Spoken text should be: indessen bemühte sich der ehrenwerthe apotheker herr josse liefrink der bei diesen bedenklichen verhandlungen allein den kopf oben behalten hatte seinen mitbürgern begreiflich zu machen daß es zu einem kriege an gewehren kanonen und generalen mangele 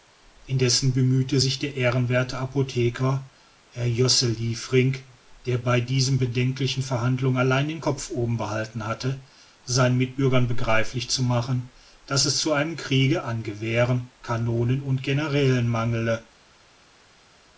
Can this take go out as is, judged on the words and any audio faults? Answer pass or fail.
pass